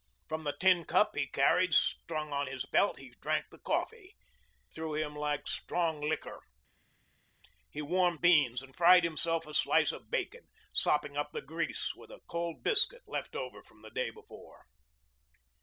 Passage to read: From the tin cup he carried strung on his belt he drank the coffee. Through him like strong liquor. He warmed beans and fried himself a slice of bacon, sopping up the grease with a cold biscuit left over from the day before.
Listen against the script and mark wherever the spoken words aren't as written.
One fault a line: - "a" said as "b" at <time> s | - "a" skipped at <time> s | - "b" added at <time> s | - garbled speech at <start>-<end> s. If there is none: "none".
none